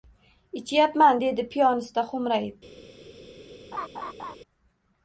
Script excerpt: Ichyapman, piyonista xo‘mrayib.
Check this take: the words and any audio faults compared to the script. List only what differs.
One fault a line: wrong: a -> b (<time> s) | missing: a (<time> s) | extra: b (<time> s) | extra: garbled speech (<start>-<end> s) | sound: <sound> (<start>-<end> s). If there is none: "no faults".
extra: dedi (1.2 s)
sound: laugh (3.7-4.4 s)